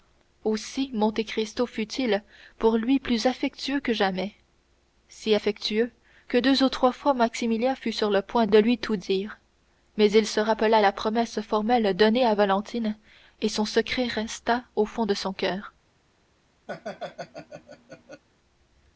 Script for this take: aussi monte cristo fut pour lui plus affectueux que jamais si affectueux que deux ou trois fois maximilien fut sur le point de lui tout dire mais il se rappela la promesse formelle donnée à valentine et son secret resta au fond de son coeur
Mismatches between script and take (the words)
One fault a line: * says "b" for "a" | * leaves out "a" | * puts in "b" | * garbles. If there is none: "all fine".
* puts in "il"